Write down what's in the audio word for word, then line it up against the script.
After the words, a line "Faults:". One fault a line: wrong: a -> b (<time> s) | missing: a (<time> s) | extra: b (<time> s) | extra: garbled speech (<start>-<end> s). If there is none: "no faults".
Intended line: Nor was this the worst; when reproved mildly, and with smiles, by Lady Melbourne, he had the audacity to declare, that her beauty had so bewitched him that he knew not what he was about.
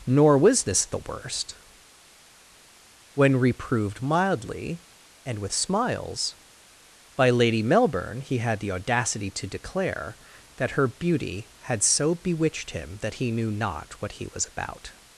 Nor was this the worst; when reproved mildly, and with smiles, by Lady Melbourne, he had the audacity to declare, that her beauty had so bewitched him that he knew not what he was about.
Faults:
no faults